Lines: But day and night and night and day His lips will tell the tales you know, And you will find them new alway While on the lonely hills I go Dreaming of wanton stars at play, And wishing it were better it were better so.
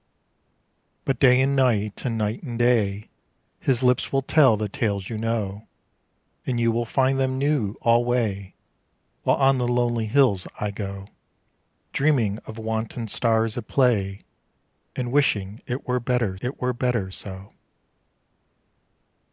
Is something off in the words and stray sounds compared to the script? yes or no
no